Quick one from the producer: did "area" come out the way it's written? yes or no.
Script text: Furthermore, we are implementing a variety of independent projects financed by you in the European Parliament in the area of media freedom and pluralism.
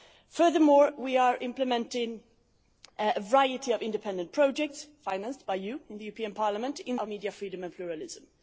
no